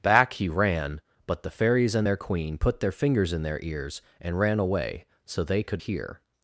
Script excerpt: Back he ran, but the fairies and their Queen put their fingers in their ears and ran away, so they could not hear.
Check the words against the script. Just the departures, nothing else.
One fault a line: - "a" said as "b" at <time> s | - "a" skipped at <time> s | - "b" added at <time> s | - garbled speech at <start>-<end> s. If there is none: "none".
- "not" skipped at 5.8 s